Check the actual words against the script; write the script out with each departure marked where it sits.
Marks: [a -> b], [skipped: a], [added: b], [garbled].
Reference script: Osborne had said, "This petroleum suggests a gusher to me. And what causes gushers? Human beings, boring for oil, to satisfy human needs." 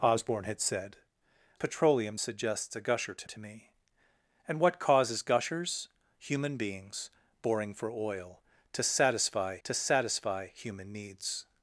Osborne had said, [skipped: "This] petroleum suggests a gusher to [added: to] me. And what causes gushers? Human beings, boring for oil, to satisfy [added: to satisfy] human needs."